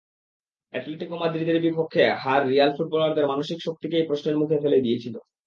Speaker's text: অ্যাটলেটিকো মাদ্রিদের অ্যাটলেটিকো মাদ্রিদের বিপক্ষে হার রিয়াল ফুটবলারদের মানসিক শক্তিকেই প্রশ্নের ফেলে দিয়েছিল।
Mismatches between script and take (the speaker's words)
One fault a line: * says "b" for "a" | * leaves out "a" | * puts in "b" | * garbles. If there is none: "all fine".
* leaves out "অ্যাটলেটিকো মাদ্রিদের"
* puts in "মুখে"